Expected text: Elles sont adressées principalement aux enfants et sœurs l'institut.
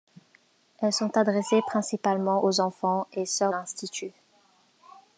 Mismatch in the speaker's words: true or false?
false